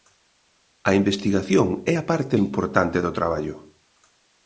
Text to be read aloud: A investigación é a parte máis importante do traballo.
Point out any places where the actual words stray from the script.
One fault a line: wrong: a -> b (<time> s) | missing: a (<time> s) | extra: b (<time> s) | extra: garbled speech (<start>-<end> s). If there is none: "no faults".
missing: máis (2.3 s)